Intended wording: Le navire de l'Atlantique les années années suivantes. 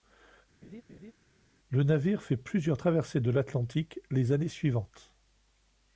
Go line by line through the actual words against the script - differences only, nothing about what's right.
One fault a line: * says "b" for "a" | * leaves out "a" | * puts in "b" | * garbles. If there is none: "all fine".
* puts in "fait plusieurs traversées"
* leaves out "années"